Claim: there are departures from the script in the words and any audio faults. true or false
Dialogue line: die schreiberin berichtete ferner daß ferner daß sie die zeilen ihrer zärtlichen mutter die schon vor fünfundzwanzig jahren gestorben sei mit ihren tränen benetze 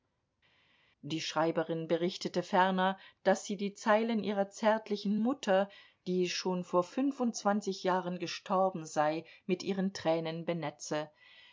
true